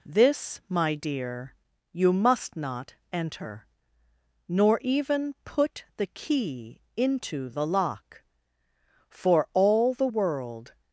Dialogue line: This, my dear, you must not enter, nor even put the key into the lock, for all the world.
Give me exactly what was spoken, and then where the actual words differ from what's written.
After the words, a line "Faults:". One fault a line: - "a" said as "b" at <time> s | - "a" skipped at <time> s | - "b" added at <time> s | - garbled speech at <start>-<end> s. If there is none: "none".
This, my dear, you must not enter, nor even put the key into the lock, for all the world.
Faults:
none